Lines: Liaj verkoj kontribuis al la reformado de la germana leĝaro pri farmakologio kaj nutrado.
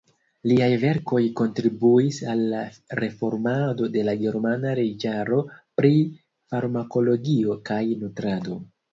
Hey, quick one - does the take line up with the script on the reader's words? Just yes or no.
yes